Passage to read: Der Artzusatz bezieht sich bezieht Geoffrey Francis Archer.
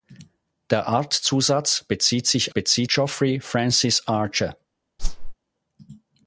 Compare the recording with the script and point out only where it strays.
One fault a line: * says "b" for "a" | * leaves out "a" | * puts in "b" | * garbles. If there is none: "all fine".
all fine